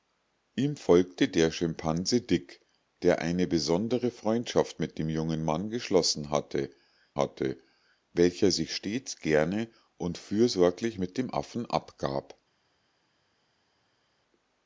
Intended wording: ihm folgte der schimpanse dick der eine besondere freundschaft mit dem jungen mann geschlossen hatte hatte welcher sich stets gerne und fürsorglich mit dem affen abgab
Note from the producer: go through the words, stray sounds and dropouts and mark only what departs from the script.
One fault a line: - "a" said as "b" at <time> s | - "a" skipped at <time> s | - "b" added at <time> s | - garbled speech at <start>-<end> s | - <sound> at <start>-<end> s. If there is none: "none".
none